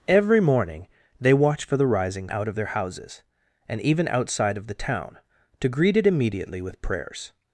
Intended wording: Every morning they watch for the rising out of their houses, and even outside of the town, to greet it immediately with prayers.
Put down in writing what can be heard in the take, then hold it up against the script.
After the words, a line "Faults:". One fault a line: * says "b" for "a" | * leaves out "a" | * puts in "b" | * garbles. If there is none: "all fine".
Every morning they watch for the rising out of their houses, and even outside of the town, to greet it immediately with prayers.
Faults:
all fine